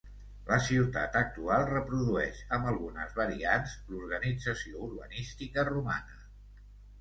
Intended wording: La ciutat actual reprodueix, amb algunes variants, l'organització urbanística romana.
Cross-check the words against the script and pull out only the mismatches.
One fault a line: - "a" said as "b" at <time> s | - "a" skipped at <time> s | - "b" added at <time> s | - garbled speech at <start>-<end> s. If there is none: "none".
none